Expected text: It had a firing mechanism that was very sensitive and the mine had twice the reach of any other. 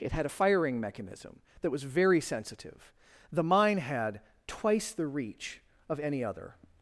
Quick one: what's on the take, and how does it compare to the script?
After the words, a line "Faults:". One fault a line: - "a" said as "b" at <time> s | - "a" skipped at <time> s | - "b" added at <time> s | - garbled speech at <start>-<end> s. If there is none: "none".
It had a firing mechanism that was very sensitive the mine had twice the reach of any other.
Faults:
- "and" skipped at 2.9 s